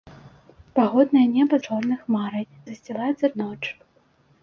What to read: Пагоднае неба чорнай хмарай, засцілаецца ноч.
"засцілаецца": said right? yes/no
yes